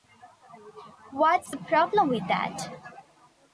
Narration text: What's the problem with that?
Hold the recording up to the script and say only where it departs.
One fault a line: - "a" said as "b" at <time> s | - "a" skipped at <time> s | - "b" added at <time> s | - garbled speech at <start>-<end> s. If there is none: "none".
none